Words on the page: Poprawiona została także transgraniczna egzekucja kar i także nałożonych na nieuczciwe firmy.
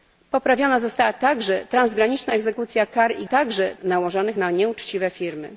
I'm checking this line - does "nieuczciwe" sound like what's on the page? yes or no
yes